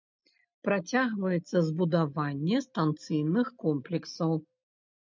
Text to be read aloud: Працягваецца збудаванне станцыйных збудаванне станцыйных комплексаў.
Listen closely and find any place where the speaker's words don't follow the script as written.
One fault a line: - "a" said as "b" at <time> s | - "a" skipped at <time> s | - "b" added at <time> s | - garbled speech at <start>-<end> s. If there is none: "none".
- "збудаванне станцыйных" skipped at 3.5 s